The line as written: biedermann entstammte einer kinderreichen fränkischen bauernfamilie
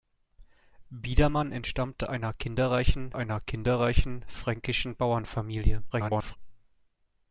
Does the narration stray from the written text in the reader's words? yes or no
yes